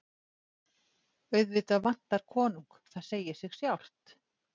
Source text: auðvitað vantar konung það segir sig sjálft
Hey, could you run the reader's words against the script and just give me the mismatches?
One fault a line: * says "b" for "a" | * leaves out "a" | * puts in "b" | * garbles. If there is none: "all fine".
all fine